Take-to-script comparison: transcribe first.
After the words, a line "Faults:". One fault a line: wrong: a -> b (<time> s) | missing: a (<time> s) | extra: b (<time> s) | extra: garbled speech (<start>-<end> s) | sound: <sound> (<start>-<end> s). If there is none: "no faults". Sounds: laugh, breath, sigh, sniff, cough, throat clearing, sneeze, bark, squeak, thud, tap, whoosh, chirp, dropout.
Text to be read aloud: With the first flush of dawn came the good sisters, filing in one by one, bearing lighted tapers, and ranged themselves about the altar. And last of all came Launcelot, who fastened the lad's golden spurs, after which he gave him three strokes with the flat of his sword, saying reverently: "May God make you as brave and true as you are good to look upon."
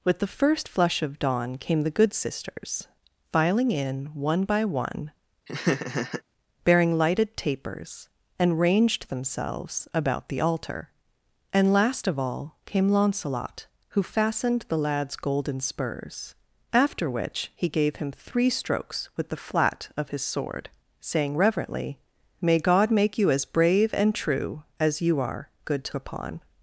With the first flush of dawn came the good sisters, filing in one by one, bearing lighted tapers, and ranged themselves about the altar. And last of all came Launcelot, who fastened the lad's golden spurs, after which he gave him three strokes with the flat of his sword, saying reverently: "May God make you as brave and true as you are good to upon."
Faults:
sound: laugh (5.5-6.2 s)
missing: look (26.0 s)